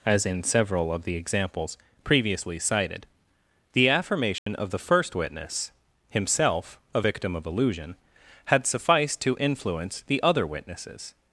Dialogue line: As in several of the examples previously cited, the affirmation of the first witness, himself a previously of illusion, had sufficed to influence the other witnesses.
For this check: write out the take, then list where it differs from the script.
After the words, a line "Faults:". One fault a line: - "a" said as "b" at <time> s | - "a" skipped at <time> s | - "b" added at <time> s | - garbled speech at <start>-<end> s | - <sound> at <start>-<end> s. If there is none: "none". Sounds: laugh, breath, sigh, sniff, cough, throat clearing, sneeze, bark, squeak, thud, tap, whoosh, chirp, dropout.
As in several of the examples previously cited, the affirmation of the first witness, himself a victim of illusion, had sufficed to influence the other witnesses.
Faults:
- dropout at 4.4-4.5 s
- "previously" said as "victim" at 7.0 s